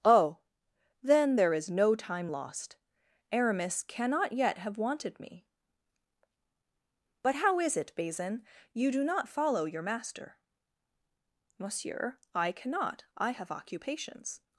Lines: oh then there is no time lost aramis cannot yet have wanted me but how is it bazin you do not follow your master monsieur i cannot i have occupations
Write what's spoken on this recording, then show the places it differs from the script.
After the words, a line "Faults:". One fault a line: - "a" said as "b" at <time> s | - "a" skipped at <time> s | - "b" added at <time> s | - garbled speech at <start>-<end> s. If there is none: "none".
oh then there is no time lost aramis cannot yet have wanted me but how is it bazin you do not follow your master monsieur i cannot i have occupations
Faults:
none